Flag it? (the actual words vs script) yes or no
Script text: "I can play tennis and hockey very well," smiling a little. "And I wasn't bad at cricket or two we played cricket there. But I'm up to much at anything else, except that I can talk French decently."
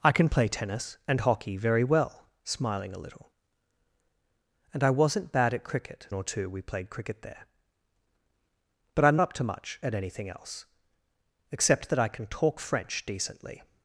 no